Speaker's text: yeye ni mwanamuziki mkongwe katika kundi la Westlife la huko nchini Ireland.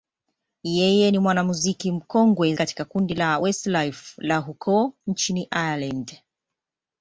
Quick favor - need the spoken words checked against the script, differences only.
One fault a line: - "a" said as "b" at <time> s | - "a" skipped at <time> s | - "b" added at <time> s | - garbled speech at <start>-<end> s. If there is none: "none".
none